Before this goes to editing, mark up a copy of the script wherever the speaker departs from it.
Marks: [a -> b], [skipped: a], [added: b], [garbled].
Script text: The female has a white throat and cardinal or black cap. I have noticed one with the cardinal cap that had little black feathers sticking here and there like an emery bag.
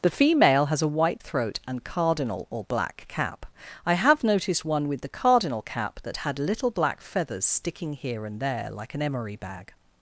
The female has a white throat and cardinal or black cap. I have noticed one with the cardinal cap that had little black feathers sticking here and there like an emery bag.